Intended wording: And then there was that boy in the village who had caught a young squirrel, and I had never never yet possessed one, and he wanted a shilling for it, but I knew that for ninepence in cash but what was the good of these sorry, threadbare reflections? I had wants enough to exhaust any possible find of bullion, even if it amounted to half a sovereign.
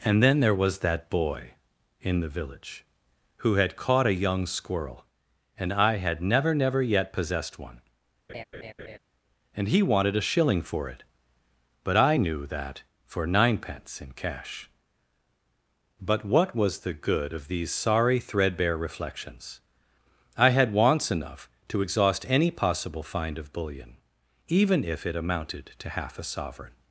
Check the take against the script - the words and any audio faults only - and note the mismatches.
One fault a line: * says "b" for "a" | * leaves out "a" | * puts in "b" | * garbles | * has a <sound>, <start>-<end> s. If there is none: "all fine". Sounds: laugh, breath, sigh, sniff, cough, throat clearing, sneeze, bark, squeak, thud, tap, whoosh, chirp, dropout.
* has a laugh, 8.3-9.0 s